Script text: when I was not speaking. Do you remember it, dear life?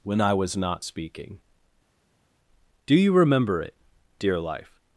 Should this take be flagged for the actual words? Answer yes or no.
no